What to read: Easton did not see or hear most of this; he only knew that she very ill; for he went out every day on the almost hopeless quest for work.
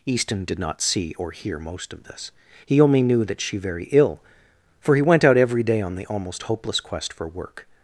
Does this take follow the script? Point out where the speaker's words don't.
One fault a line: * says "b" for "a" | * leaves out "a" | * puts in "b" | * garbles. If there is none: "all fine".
all fine